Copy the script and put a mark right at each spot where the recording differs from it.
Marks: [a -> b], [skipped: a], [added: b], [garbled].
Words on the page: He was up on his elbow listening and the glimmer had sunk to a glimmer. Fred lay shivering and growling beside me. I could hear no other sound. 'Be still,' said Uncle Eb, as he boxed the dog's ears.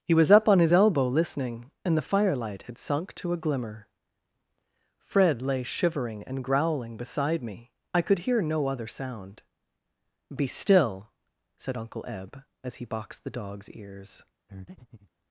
He was up on his elbow listening and the [glimmer -> firelight] had sunk to a glimmer. Fred lay shivering and growling beside me. I could hear no other sound. 'Be still,' said Uncle Eb, as he boxed the dog's ears.